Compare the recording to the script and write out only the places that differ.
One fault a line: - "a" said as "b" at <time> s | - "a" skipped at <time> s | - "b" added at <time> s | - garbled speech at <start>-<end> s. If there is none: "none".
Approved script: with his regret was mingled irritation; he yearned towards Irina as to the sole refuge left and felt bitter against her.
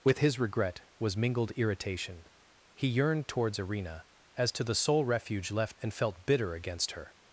none